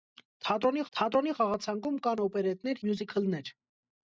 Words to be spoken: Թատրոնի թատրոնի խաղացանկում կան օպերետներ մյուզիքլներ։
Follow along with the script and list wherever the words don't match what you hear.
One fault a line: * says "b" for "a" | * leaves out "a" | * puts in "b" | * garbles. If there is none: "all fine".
all fine